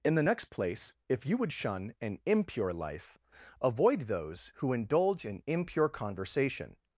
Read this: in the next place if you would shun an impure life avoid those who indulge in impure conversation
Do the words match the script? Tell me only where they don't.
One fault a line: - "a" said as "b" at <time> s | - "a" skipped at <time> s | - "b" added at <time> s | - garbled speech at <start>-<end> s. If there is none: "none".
none